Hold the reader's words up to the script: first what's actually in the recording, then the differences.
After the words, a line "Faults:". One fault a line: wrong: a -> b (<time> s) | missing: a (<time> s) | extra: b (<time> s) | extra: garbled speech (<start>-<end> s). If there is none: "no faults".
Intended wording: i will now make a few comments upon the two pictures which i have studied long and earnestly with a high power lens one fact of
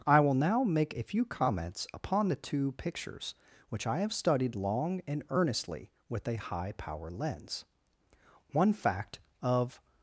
i will now make a few comments upon the two pictures which i have studied long and earnestly with a high power lens one fact of
Faults:
no faults